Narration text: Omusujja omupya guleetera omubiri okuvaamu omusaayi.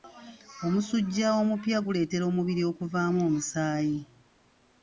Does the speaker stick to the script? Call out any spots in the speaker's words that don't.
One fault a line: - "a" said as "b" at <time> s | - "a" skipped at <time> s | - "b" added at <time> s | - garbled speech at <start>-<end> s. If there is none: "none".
none